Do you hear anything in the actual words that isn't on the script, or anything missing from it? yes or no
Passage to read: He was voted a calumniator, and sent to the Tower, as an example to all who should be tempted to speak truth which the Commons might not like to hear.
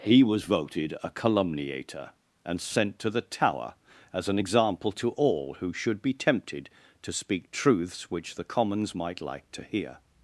yes